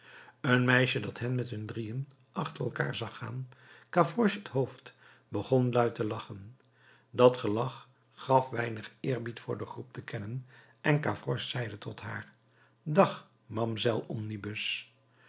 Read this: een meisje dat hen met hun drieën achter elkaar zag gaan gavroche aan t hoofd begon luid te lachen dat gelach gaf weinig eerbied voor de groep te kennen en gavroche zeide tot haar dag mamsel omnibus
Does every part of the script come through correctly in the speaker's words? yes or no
no